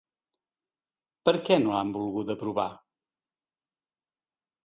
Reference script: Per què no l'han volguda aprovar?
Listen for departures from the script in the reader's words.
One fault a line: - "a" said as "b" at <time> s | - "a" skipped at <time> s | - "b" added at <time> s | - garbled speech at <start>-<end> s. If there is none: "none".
none